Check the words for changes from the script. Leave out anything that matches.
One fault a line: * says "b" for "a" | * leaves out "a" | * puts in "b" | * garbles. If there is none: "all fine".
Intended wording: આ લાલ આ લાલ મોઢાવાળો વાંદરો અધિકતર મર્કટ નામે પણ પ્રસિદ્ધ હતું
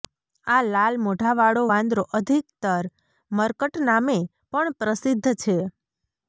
* leaves out "આ લાલ"
* says "છે" for "હતું"